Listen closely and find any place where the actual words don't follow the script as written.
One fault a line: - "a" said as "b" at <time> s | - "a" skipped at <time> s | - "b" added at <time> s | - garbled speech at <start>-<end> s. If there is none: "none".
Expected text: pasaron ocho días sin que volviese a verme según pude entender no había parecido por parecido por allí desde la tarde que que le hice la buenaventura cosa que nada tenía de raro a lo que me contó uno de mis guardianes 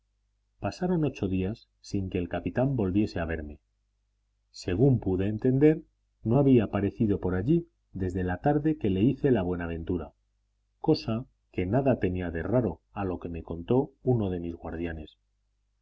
- "el capitán" added at 2.2 s
- "parecido por" skipped at 7.4 s
- "que" skipped at 8.9 s